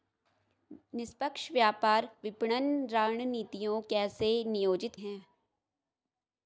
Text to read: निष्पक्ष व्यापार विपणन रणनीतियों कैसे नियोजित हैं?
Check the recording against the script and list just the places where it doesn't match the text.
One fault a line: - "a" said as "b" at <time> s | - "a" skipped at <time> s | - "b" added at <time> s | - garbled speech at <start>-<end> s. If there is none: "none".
none